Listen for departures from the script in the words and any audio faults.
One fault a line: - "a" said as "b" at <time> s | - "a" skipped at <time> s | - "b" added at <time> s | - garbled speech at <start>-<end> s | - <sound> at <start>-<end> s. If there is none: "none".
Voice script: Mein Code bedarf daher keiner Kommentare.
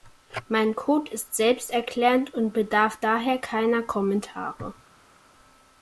- "ist selbsterklärend und" added at 1.1 s